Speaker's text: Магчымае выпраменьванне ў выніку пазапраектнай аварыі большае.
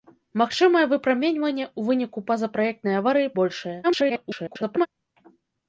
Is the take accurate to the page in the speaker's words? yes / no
no